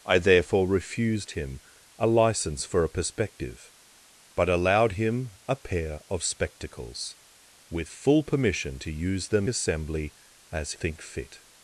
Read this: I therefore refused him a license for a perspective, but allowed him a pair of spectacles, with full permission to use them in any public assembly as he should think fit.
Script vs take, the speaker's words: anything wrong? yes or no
yes